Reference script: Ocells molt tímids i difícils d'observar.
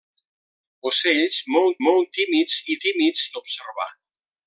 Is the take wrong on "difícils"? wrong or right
wrong